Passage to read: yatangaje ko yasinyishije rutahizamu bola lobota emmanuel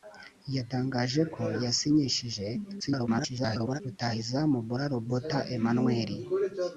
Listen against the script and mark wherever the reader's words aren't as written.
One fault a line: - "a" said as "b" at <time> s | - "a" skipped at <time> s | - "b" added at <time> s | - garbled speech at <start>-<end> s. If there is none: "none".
- garbled speech at 2.8-3.8 s